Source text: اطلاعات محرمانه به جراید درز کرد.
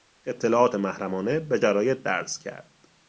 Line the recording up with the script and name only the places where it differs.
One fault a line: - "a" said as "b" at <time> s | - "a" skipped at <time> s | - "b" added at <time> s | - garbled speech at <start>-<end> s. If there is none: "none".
none